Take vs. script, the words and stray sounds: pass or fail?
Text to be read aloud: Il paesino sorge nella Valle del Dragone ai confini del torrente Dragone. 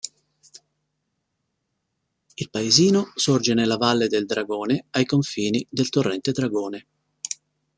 pass